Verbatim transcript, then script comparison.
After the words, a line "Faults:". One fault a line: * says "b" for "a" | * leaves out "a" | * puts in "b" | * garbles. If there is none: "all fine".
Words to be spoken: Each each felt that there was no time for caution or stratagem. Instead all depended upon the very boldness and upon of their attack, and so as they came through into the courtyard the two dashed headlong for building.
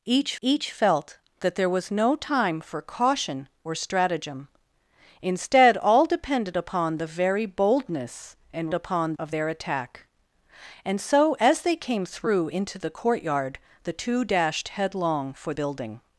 Each each felt that there was no time for caution or stratagem. Instead all depended upon the very boldness and upon of their attack, and so as they came through into the courtyard the two dashed headlong for building.
Faults:
all fine